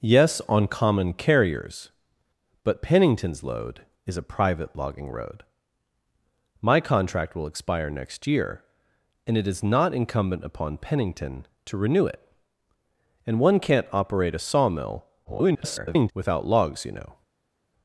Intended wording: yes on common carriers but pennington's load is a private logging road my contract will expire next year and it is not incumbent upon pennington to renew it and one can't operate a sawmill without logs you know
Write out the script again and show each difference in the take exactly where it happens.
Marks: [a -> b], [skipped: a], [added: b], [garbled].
yes on common carriers but pennington's load is a private logging road my contract will expire next year and it is not incumbent upon pennington to renew it and one can't operate a sawmill [garbled] without logs you know